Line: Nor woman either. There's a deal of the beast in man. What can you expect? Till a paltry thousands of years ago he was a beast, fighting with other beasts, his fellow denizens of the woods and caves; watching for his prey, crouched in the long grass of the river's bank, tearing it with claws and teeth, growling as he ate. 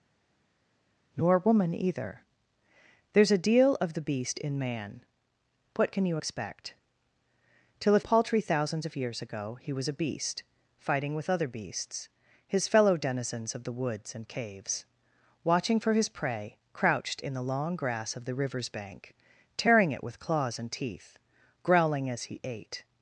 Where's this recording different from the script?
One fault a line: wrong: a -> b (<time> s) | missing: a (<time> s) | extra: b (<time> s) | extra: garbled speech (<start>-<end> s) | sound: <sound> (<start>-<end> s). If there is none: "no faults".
no faults